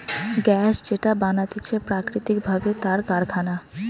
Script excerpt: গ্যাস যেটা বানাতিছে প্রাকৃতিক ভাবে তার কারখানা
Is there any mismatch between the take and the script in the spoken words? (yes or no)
no